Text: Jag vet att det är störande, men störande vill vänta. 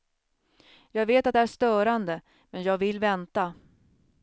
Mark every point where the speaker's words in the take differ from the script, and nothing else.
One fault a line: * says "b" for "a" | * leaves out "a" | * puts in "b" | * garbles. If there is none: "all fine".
* says "jag" for "störande"